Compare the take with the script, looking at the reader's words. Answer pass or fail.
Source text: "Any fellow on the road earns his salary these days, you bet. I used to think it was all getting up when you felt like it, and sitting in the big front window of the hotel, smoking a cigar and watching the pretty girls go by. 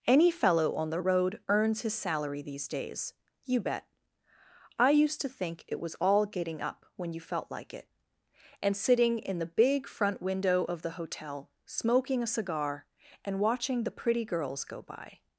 pass